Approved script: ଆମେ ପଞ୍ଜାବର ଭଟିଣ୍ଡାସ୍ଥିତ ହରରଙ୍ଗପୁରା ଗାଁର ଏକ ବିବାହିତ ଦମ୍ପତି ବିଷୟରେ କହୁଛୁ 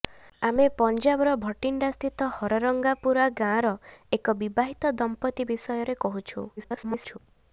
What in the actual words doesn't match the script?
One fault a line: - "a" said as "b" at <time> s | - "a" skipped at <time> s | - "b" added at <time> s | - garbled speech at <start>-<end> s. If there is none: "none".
- garbled speech at 6.6-7.2 s